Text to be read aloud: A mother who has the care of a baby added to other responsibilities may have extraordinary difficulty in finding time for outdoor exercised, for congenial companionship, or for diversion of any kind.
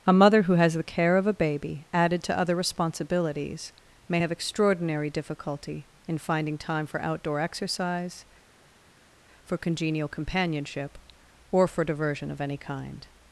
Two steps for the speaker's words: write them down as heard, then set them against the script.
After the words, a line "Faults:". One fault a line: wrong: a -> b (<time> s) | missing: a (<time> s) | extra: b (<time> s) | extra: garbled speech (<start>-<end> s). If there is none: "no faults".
A mother who has the care of a baby added to other responsibilities may have extraordinary difficulty in finding time for outdoor exercise, for congenial companionship, or for diversion of any kind.
Faults:
wrong: exercised -> exercise (7.4 s)